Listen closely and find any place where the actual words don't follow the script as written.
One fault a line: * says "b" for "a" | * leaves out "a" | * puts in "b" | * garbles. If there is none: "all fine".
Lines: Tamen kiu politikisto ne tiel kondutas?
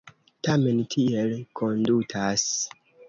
* leaves out "kiu politikisto ne"